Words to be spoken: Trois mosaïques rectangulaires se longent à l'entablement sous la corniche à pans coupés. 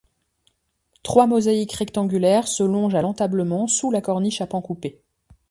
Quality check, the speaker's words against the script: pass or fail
pass